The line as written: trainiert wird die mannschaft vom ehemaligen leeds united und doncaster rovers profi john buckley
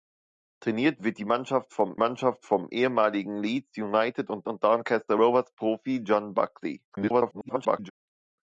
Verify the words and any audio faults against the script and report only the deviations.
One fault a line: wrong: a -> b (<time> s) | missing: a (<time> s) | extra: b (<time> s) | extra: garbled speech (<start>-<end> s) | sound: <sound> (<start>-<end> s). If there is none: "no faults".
extra: mannschaft vom (2.0 s)
extra: und (4.4 s)
extra: garbled speech (6.9-7.9 s)